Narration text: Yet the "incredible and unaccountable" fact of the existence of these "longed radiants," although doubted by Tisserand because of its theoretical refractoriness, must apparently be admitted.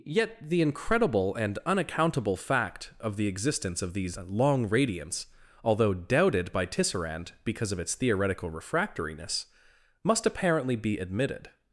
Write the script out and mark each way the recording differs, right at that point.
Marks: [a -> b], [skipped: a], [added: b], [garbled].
Yet the "incredible and unaccountable" fact of the existence of these ["longed -> long] radiants," although doubted by Tisserand because of its theoretical refractoriness, must apparently be admitted.